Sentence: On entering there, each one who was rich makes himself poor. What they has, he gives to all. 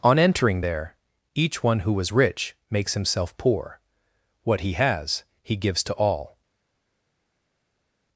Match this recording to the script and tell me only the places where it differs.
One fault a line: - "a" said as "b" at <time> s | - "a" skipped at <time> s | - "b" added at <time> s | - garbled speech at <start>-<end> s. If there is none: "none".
- "they" said as "he" at 4.6 s